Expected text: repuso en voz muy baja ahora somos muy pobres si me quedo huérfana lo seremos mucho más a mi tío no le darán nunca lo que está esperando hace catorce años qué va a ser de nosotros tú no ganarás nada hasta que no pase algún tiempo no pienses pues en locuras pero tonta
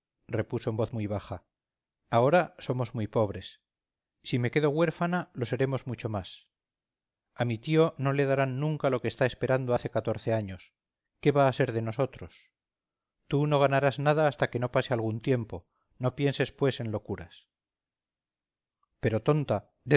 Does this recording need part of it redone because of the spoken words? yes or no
no